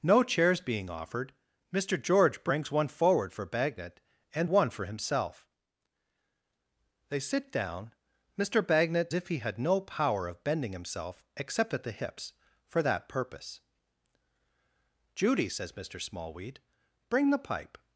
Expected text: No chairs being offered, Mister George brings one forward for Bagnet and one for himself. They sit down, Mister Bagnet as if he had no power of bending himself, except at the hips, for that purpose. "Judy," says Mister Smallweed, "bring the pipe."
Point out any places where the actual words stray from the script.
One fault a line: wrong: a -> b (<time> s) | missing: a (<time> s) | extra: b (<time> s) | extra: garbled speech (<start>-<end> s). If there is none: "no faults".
missing: as (9.1 s)